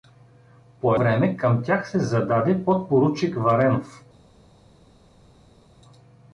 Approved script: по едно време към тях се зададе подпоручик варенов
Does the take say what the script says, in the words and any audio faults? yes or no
no